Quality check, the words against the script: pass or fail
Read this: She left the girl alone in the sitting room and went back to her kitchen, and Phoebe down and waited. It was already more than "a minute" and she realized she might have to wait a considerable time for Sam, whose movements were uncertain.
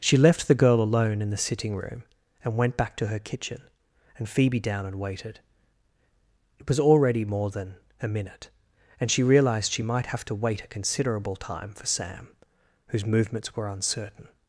pass